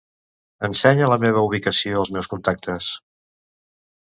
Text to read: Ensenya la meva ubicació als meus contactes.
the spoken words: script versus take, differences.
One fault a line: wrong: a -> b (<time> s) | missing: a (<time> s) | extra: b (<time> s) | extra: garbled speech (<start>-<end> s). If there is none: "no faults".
no faults